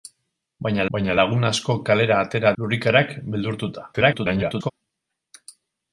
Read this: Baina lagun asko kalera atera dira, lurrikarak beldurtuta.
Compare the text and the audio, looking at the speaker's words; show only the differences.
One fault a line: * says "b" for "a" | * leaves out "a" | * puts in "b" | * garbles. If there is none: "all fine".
* puts in "baina"
* leaves out "dira"
* garbles